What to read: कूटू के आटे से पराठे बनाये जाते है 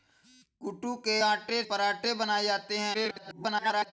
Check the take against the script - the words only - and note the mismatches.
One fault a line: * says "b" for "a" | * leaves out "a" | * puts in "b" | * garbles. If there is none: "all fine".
* leaves out "से"
* garbles